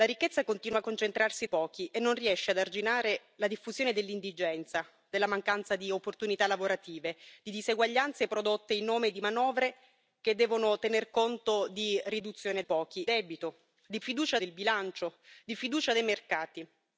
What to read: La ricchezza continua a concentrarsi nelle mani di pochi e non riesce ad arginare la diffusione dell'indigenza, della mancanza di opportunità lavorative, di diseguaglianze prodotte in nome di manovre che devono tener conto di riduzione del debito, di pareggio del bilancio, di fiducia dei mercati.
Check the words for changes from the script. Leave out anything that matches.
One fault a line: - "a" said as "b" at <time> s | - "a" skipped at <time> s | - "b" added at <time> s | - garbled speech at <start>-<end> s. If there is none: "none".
- "nelle mani di" skipped at 1.5 s
- "del" said as "pochi" at 12.6 s
- "pareggio" said as "fiducia" at 14.0 s